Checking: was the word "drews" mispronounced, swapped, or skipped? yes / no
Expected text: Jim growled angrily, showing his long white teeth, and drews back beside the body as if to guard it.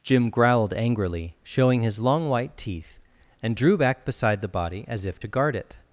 yes